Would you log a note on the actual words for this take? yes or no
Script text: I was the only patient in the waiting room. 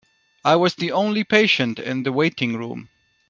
no